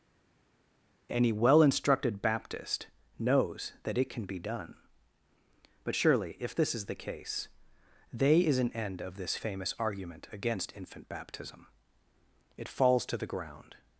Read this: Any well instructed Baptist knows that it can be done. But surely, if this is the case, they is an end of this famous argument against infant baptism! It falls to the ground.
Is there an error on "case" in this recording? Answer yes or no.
no